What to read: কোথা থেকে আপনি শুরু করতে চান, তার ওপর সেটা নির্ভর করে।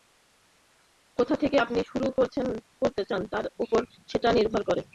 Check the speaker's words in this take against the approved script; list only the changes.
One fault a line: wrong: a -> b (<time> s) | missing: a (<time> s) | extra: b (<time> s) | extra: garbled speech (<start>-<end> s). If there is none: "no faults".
no faults